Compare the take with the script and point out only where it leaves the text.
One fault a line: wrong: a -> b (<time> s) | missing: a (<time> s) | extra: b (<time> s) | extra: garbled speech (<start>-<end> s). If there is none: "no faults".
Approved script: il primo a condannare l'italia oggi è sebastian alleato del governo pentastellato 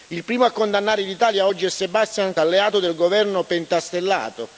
no faults